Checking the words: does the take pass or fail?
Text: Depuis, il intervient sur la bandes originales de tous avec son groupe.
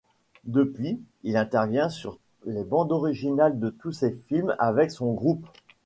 fail